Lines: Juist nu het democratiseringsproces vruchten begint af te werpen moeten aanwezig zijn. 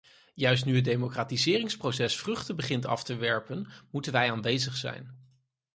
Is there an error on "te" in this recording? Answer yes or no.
no